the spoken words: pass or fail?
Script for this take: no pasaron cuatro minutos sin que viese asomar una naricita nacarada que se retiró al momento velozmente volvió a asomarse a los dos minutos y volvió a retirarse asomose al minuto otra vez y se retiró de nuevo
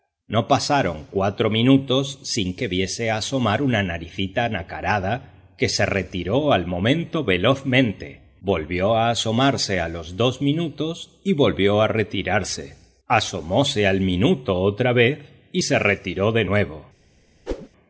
pass